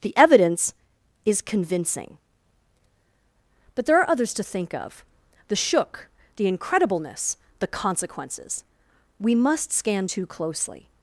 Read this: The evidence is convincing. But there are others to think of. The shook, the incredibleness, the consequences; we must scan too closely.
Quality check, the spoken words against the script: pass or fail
pass